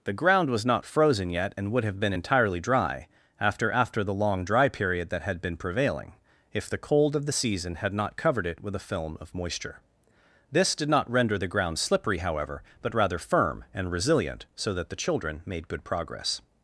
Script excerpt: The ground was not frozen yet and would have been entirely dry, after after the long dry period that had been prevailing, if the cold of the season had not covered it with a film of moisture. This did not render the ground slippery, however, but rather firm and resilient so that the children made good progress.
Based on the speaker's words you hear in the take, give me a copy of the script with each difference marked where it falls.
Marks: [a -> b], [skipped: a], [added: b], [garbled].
The ground was not frozen yet and would have been entirely dry, after after the long dry period that had been prevailing, if the cold of the season had not covered it with a film of moisture. This did not render the ground slippery, however, but rather firm and resilient so that the children made good progress.